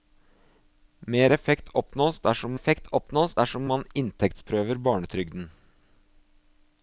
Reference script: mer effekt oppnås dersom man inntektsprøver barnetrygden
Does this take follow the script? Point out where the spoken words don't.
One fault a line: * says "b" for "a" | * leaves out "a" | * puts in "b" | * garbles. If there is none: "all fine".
* puts in "effekt oppnås dersom"